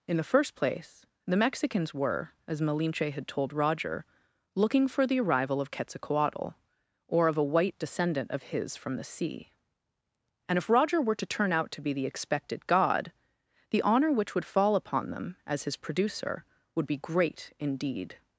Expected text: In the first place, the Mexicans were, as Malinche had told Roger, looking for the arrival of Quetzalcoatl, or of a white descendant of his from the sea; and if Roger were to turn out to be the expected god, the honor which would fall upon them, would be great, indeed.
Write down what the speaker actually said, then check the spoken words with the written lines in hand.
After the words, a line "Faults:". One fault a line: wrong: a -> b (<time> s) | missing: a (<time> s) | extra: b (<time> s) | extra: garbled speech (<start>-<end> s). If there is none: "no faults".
In the first place, the Mexicans were, as Malinche had told Roger, looking for the arrival of Quetzalcoatl, or of a white descendant of his from the sea; and if Roger were to turn out to be the expected god, the honor which would fall upon them, as his producer, would be great, indeed.
Faults:
extra: as his producer (15.5 s)